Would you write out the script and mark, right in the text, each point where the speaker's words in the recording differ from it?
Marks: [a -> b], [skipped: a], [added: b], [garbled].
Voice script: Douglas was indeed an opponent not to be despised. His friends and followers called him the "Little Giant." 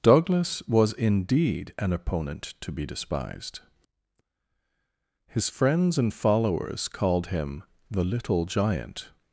Douglas was indeed an opponent [skipped: not] to be despised. His friends and followers called him the "Little Giant."